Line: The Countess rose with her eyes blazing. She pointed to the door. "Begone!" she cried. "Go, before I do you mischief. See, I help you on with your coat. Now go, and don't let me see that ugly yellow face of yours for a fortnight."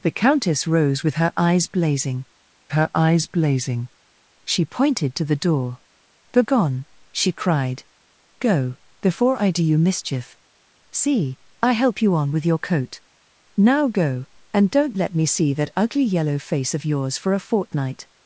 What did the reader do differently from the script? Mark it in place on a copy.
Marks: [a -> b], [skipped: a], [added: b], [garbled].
The Countess rose with her eyes blazing. [added: her eyes blazing] She pointed to the door. "Begone!" she cried. "Go, before I do you mischief. See, I help you on with your coat. Now go, and don't let me see that ugly yellow face of yours for a fortnight."